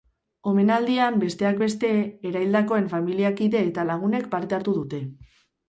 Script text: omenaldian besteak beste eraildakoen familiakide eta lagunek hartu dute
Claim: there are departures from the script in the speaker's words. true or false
true